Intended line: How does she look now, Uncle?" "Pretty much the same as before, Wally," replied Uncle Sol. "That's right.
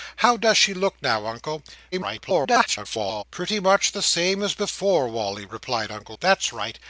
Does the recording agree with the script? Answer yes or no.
no